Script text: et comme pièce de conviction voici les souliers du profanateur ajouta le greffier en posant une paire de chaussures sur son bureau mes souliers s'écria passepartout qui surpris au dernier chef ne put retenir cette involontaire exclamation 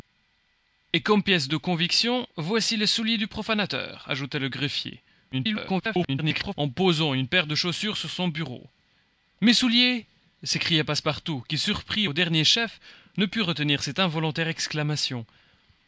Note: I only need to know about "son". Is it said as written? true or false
true